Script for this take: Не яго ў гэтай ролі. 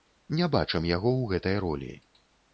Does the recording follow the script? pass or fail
fail